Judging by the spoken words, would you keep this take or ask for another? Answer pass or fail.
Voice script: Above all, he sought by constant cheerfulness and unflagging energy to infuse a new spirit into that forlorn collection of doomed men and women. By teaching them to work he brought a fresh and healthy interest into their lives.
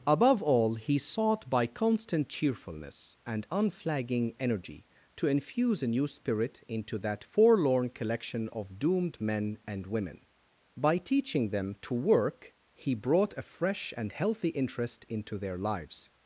pass